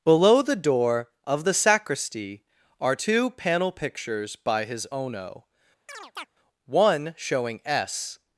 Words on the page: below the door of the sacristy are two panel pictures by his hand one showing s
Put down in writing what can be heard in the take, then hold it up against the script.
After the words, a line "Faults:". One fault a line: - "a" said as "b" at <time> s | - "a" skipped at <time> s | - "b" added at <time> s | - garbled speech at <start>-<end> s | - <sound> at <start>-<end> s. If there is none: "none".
below the door of the sacristy are two panel pictures by his ono one showing s
Faults:
- "hand" said as "ono" at 4.9 s
- chirp at 5.9-6.3 s